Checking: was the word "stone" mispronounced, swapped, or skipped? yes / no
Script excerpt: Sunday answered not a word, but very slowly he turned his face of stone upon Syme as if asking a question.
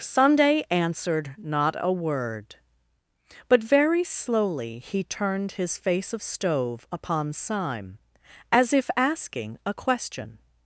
yes